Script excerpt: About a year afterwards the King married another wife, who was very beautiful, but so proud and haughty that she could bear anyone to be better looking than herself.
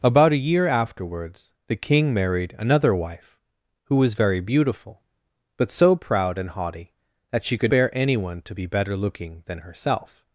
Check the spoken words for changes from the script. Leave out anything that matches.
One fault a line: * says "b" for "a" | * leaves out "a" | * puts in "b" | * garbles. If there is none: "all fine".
all fine